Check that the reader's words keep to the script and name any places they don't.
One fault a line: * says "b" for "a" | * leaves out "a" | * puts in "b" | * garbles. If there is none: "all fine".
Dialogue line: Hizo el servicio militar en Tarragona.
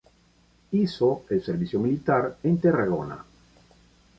all fine